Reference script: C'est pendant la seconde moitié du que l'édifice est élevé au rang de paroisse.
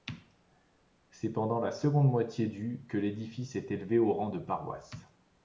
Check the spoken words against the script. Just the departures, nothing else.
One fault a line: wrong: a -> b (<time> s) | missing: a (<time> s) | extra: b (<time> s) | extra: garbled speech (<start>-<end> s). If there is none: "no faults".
no faults